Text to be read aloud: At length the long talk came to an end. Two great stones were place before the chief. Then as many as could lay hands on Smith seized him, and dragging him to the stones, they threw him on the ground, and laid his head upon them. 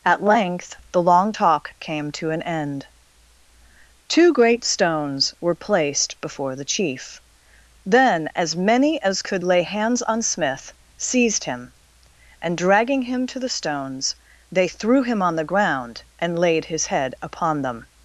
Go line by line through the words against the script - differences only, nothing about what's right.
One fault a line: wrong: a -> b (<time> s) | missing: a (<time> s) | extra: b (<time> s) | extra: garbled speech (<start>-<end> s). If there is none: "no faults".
wrong: place -> placed (5.5 s)